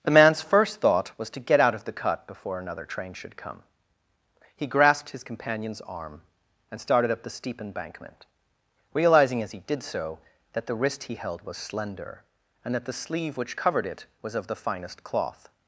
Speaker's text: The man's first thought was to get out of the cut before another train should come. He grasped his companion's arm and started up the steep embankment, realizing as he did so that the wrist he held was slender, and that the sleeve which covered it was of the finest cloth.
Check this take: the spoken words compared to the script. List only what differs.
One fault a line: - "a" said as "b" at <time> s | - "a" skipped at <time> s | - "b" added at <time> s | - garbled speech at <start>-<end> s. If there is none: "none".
none